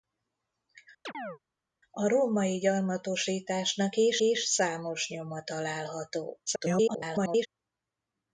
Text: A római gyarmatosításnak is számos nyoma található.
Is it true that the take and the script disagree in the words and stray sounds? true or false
true